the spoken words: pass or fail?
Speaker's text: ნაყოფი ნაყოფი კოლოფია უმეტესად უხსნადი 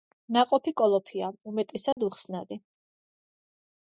fail